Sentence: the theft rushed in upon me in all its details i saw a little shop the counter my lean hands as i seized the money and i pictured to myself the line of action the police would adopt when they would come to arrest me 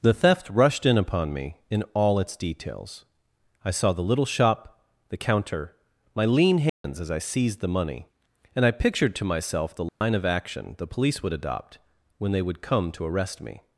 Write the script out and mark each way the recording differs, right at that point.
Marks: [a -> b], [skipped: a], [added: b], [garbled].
the theft rushed in upon me in all its details i saw [a -> the] little shop the counter my lean hands as i seized the money and i pictured to myself the line of action the police would adopt when they would come to arrest me